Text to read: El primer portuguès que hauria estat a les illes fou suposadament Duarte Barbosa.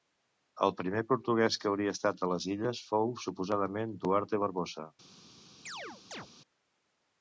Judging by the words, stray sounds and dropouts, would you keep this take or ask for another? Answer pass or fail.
fail